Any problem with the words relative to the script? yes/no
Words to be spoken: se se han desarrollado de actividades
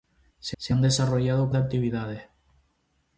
no